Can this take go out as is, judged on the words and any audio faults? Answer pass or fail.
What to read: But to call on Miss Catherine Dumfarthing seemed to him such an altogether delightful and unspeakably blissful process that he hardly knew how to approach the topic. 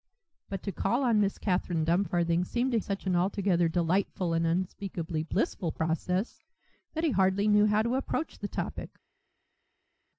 fail